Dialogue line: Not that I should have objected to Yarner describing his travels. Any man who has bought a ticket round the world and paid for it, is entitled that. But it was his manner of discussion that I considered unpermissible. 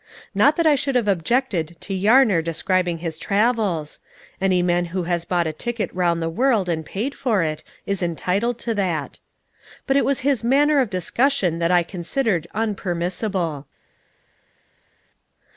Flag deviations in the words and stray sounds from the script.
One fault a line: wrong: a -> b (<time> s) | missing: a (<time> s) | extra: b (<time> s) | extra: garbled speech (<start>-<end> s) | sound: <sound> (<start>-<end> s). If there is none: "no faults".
extra: to (8.6 s)